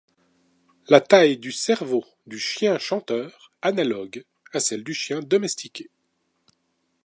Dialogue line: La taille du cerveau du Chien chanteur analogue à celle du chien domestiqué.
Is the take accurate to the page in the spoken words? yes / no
yes